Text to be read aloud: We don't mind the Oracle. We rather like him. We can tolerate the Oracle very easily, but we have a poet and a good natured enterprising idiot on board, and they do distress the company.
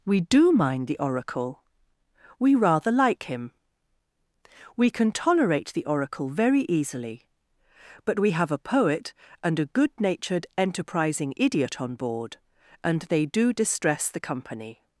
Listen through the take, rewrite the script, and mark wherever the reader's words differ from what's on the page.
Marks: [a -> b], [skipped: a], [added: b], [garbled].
We [don't -> do] mind the Oracle. We rather like him. We can tolerate the Oracle very easily, but we have a poet and a good natured enterprising idiot on board, and they do distress the company.